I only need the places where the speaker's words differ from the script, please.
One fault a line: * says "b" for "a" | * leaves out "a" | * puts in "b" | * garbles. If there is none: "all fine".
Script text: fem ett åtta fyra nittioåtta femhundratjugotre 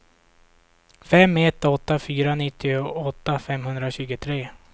all fine